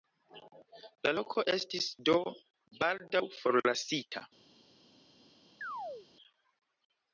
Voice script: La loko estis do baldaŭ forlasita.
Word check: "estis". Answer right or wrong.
right